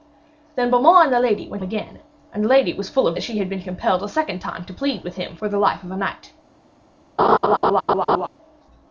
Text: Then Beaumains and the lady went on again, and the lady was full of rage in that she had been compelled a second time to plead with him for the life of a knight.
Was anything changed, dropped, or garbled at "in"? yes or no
yes